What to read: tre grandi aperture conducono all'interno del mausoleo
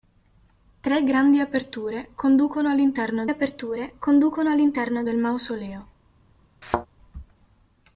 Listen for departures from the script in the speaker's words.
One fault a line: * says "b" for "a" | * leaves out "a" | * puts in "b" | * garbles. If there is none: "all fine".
* puts in "aperture conducono all'interno"